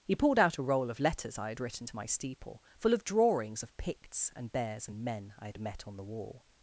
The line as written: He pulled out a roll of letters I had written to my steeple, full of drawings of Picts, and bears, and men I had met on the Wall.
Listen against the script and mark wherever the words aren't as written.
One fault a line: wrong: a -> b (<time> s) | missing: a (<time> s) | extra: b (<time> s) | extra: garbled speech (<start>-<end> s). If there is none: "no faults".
no faults